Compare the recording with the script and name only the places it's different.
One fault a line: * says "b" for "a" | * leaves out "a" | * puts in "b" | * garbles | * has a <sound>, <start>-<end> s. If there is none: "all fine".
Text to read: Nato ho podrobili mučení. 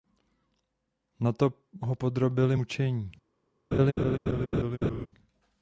* has a laugh, 3.7-5.1 s